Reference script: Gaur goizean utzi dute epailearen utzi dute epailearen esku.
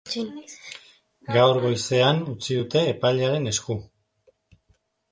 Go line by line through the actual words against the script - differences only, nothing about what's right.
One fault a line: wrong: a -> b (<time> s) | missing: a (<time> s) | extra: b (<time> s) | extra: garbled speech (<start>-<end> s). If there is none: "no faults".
missing: utzi dute epailearen (3.5 s)